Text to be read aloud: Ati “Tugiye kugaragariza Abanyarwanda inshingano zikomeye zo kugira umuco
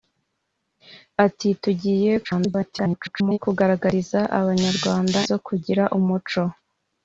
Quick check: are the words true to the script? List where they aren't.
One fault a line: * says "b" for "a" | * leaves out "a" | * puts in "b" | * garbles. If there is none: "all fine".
* garbles
* leaves out "inshingano zikomeye"